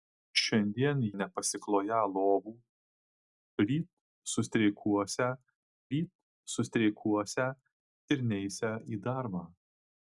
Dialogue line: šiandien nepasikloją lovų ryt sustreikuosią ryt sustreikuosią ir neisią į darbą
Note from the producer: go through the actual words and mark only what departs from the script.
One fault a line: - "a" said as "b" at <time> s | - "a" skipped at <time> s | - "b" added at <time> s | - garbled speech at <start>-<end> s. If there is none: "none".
none